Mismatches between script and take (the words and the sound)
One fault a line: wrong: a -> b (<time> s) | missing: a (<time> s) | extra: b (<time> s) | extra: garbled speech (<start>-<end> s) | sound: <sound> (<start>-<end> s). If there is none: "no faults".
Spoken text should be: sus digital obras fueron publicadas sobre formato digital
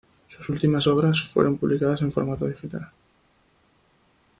wrong: digital -> últimas (0.5 s)
wrong: sobre -> en (2.0 s)